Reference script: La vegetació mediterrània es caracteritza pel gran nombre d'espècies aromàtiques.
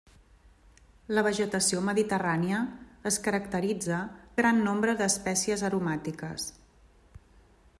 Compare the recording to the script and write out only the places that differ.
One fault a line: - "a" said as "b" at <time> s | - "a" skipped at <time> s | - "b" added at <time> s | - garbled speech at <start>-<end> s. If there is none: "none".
- "pel" skipped at 4.0 s